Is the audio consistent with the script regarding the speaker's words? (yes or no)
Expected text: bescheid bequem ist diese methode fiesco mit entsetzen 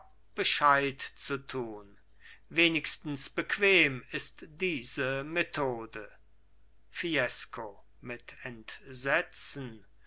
no